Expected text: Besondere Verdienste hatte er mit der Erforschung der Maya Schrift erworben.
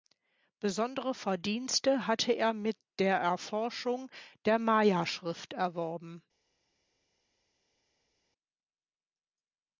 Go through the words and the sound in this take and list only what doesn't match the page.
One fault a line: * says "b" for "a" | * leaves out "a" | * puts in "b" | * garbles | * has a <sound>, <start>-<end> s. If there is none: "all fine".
all fine